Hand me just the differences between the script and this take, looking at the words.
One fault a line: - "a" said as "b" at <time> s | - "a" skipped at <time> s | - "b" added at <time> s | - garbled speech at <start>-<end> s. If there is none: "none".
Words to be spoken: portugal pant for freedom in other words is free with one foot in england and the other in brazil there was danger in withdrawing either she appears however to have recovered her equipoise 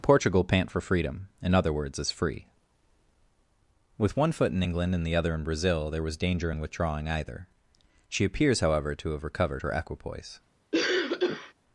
none